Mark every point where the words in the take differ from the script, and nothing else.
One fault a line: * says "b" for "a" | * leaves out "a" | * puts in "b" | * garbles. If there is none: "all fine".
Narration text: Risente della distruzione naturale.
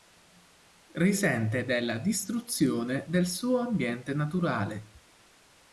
* puts in "del suo ambiente"